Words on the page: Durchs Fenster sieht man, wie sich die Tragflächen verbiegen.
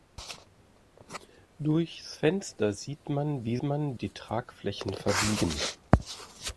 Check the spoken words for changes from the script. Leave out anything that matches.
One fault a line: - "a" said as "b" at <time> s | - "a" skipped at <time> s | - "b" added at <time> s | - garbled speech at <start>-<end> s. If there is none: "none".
- "sich" said as "man" at 3.6 s